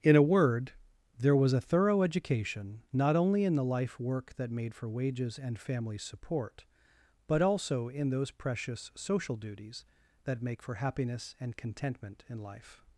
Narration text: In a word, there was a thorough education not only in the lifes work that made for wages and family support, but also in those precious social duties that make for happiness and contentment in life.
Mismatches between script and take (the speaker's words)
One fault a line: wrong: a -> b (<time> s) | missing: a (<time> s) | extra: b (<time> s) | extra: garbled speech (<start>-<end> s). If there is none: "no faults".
wrong: lifes -> life (3.6 s)